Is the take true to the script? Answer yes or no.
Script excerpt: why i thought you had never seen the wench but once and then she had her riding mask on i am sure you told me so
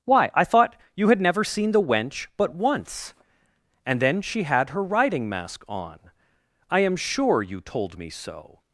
yes